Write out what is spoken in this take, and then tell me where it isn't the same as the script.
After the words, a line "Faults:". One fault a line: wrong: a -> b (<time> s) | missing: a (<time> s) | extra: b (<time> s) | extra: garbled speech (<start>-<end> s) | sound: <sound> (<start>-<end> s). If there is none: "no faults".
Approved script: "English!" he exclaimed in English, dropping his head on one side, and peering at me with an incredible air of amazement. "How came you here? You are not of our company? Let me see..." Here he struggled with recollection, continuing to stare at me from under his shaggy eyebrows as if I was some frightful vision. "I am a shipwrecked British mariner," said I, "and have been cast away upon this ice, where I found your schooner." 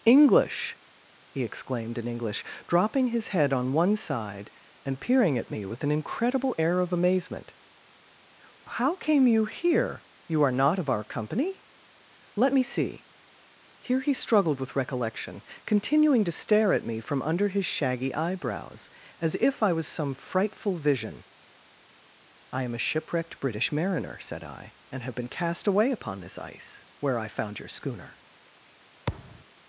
"English!" he exclaimed in English, dropping his head on one side, and peering at me with an incredible air of amazement. "How came you here? You are not of our company? Let me see..." Here he struggled with recollection, continuing to stare at me from under his shaggy eyebrows as if I was some frightful vision. "I am a shipwrecked British mariner," said I, "and have been cast away upon this ice, where I found your schooner."
Faults:
sound: thud (29.1-29.5 s)